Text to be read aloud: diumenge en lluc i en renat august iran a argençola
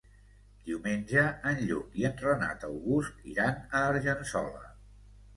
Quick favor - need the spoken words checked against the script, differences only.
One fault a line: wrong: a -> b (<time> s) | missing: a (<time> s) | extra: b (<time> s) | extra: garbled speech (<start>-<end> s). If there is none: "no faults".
no faults